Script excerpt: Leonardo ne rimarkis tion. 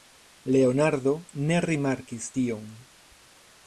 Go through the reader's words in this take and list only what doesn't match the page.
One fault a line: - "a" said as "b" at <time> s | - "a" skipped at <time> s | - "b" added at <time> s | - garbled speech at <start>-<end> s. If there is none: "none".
none